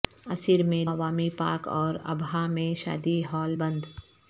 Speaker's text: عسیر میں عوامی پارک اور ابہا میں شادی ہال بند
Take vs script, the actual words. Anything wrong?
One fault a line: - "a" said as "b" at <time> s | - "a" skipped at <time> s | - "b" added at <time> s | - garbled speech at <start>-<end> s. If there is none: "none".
none